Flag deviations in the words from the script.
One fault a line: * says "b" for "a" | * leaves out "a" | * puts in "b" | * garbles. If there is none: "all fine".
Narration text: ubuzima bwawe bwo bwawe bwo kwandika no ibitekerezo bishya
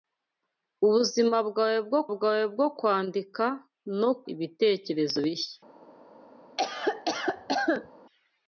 all fine